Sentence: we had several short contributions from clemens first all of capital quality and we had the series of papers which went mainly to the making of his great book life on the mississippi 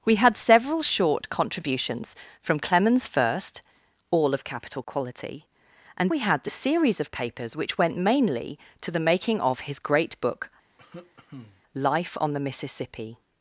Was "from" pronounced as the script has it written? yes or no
yes